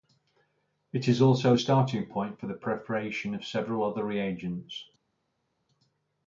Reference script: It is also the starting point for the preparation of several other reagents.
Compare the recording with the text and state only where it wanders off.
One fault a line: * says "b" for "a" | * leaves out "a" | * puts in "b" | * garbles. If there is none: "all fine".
all fine